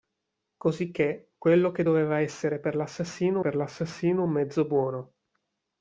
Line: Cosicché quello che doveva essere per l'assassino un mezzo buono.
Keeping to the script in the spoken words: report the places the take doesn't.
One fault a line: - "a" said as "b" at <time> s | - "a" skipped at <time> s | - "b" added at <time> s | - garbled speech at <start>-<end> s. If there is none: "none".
- "per l'assassino" added at 3.4 s